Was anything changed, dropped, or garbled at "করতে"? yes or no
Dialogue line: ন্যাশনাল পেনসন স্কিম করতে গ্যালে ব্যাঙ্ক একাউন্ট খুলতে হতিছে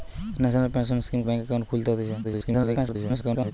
yes